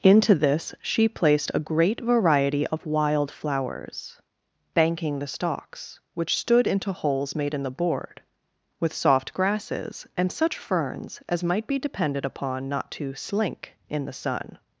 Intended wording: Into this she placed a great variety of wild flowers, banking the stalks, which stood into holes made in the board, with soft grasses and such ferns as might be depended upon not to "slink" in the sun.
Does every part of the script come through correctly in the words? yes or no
yes